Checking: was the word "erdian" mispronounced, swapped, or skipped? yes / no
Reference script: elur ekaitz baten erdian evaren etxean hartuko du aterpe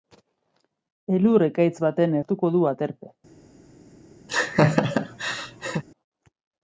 yes